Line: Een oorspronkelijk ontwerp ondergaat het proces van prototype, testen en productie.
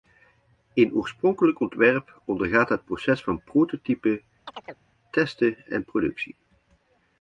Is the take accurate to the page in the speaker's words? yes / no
yes